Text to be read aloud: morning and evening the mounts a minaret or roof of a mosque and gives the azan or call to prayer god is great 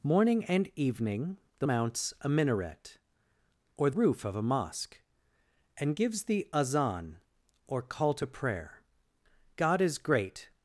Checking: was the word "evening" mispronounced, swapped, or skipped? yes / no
no